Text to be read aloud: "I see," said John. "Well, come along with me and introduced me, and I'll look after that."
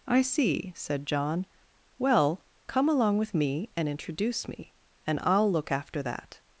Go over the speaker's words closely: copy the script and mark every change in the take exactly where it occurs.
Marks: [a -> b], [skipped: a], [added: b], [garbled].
"I see," said John. "Well, come along with me and [introduced -> introduce] me, and I'll look after that."